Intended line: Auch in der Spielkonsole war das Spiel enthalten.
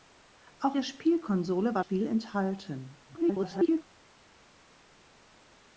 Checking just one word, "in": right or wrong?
wrong